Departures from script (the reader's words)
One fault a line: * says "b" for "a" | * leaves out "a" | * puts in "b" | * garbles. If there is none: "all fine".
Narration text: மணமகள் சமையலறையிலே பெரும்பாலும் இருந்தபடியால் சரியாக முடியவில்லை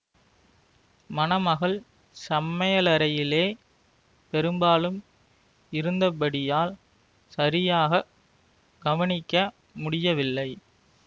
* puts in "கவனிக்க"